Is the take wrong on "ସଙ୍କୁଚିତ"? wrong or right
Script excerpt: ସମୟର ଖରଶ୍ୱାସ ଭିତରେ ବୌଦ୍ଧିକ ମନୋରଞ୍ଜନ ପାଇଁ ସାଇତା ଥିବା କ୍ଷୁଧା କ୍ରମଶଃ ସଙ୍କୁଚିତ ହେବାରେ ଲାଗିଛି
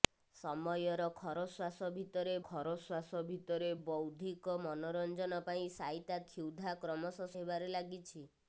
wrong